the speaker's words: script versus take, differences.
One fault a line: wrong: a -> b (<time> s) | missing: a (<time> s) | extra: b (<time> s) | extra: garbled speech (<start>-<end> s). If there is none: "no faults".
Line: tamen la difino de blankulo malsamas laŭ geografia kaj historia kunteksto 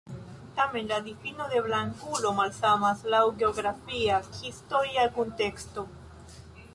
missing: kaj (4.2 s)